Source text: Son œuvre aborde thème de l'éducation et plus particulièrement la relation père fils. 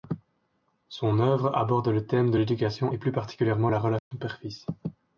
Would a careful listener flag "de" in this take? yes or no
no